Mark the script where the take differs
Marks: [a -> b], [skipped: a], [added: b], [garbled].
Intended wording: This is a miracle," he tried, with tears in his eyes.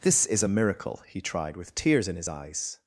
This is a miracle," he tried, with tears in his eyes.